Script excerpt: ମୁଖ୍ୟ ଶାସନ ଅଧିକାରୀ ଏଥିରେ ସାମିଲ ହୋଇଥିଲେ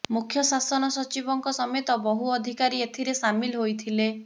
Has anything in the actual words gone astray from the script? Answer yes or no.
yes